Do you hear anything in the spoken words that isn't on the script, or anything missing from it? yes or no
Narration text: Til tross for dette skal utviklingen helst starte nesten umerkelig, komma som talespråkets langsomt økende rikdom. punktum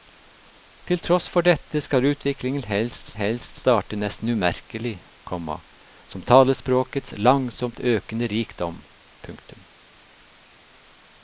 yes